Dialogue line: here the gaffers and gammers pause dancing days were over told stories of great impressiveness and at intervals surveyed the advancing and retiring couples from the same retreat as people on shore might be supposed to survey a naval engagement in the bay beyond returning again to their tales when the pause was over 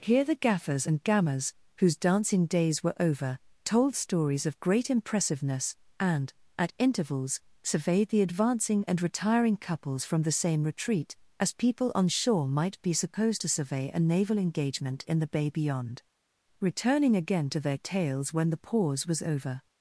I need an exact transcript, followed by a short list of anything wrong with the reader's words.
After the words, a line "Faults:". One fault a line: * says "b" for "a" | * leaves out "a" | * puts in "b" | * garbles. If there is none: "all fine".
here the gaffers and gammers whose dancing days were over told stories of great impressiveness and at intervals surveyed the advancing and retiring couples from the same retreat as people on shore might be supposed to survey a naval engagement in the bay beyond returning again to their tales when the pause was over
Faults:
* says "whose" for "pause"